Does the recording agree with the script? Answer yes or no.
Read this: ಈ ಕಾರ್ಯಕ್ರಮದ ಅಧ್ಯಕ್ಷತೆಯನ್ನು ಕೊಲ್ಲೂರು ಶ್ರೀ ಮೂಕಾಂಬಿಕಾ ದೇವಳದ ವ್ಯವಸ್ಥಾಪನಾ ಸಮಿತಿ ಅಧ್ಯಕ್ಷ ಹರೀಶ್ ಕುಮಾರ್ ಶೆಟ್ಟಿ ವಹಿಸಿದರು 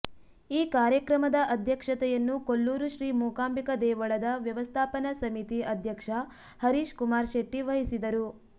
yes